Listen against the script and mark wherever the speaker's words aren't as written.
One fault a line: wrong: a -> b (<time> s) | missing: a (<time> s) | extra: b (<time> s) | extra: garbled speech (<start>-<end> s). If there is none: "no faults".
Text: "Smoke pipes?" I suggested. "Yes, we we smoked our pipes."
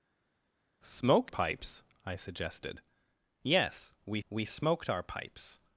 no faults